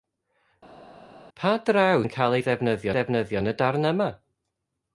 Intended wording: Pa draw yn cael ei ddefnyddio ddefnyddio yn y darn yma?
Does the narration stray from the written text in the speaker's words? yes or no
no